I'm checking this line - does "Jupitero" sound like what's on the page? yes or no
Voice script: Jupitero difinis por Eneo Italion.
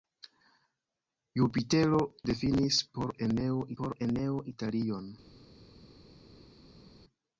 yes